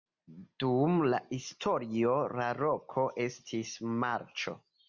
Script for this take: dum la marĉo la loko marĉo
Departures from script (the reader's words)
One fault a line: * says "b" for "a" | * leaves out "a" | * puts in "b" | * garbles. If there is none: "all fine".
* says "historio" for "marĉo"
* puts in "estis"